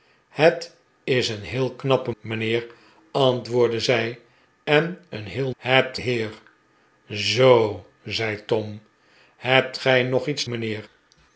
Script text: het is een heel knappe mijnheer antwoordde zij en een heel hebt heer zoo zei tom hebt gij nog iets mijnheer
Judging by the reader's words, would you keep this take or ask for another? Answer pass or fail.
pass